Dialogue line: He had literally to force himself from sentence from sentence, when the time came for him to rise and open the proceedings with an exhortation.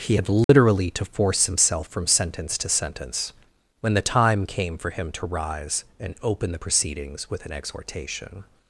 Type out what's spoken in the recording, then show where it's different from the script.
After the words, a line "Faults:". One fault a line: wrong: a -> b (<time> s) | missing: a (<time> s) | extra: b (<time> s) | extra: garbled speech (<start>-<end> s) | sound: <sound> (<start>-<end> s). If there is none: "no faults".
He had literally to force himself from sentence to sentence, when the time came for him to rise and open the proceedings with an exhortation.
Faults:
sound: dropout (0.4-0.5 s)
wrong: from -> to (2.6 s)